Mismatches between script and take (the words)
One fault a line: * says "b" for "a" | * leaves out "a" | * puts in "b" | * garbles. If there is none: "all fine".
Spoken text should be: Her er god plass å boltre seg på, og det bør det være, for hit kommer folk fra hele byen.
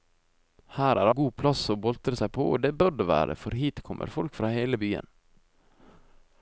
all fine